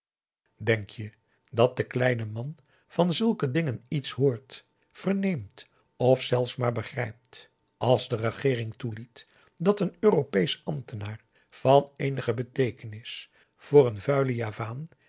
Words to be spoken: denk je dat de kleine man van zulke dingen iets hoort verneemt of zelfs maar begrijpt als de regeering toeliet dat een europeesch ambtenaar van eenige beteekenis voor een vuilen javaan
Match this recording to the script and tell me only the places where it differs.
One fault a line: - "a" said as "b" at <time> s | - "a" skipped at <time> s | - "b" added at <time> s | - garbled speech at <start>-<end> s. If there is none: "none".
none